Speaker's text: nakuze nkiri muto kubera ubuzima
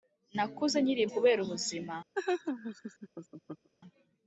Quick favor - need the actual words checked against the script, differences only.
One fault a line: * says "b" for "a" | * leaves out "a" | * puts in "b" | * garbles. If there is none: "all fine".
* leaves out "muto"